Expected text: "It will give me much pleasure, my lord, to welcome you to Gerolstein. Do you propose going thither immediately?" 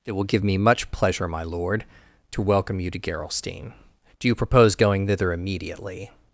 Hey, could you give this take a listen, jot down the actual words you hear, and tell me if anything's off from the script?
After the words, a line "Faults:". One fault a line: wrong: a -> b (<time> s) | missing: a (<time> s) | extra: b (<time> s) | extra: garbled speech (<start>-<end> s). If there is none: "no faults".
"It will give me much pleasure, my lord, to welcome you to Gerolstein. Do you propose going thither immediately?"
Faults:
no faults